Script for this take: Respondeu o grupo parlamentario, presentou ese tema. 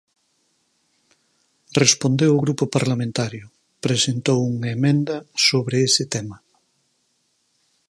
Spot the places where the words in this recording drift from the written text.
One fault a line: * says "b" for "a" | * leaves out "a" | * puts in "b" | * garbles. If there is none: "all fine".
* puts in "unha emenda sobre"